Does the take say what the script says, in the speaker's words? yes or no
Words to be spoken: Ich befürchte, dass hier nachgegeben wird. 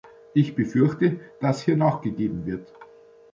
yes